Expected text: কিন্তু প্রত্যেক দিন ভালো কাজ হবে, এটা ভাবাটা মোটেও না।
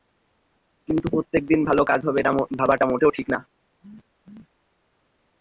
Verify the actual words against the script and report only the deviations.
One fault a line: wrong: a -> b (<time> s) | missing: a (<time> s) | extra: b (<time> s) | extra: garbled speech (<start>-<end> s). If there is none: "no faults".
extra: ঠিক (3.2 s)